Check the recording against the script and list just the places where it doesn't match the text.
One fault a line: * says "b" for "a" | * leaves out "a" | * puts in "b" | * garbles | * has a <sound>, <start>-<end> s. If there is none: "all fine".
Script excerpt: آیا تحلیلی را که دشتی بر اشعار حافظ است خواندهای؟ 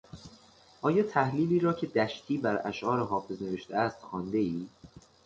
* puts in "نوشته"